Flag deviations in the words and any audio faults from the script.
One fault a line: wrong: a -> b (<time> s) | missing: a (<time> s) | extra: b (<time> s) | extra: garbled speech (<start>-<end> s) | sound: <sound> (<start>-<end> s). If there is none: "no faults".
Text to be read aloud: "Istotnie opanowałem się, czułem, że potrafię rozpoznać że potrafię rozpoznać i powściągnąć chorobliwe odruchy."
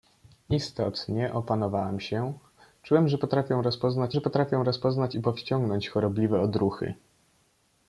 no faults